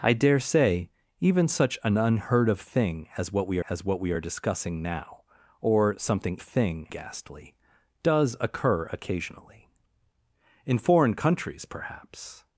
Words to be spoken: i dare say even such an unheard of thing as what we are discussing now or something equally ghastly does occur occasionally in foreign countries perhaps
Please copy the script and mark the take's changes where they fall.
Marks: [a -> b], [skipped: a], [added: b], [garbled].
i dare say even such an unheard of thing as what we [added: as what we] are discussing now or something [equally -> thing] ghastly does occur occasionally in foreign countries perhaps